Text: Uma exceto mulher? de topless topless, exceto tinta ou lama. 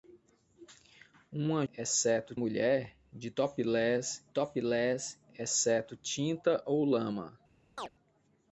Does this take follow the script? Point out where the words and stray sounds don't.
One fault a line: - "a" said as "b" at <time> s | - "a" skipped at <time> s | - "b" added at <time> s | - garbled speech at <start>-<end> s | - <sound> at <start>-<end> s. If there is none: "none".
- chirp at 7.8-7.9 s